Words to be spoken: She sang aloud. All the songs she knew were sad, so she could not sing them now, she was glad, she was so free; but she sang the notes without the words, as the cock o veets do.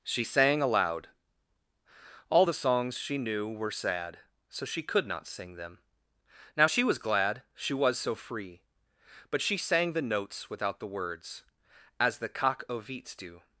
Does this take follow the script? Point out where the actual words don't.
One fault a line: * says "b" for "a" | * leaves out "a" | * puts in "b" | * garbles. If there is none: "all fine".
all fine